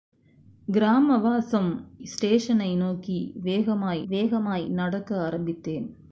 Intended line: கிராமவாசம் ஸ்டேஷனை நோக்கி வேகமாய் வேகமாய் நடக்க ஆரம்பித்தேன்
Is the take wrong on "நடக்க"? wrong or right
right